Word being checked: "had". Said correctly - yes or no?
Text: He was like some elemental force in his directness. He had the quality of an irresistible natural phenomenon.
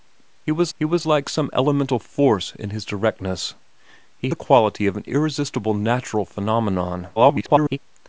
no